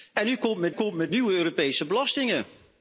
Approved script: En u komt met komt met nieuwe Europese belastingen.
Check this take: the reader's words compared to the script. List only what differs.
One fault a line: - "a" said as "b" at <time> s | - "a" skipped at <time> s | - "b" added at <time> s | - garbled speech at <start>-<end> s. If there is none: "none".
none